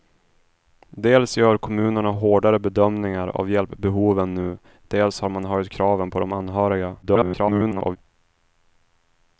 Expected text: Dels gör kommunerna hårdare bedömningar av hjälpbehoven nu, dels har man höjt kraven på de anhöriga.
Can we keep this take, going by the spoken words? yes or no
no